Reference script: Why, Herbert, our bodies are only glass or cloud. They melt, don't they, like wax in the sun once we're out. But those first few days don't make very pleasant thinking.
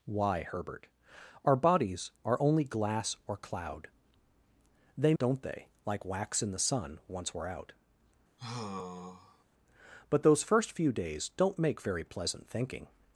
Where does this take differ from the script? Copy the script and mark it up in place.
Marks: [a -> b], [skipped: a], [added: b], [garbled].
Why, Herbert, our bodies are only glass or cloud. They [skipped: melt,] don't they, like wax in the sun once we're out. But those first few days don't make very pleasant thinking.